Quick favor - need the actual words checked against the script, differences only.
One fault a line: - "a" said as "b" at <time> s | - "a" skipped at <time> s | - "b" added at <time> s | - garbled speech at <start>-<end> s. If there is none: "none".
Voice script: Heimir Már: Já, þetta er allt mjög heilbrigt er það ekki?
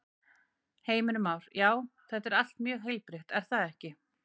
none